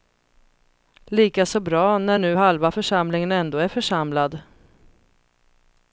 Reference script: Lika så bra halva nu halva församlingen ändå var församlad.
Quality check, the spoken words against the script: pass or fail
fail